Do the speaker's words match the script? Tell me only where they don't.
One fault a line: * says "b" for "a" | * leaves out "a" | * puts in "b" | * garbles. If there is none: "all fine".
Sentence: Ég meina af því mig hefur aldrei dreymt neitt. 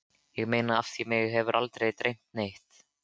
all fine